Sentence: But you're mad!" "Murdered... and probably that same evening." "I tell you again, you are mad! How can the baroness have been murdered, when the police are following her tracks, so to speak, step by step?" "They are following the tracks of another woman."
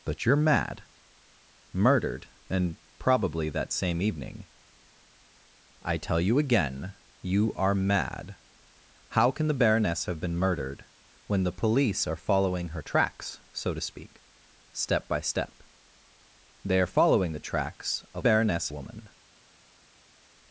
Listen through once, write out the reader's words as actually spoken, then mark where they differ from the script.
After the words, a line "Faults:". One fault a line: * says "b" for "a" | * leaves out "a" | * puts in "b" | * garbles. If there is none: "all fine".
But you're mad!" "Murdered... and probably that same evening." "I tell you again, you are mad! How can the baroness have been murdered, when the police are following her tracks, so to speak, step by step?" "They are following the tracks of baroness woman."
Faults:
* says "baroness" for "another"